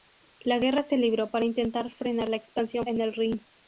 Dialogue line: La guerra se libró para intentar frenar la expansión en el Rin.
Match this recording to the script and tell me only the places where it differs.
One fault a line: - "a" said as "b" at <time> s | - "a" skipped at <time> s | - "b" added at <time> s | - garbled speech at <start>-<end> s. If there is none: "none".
none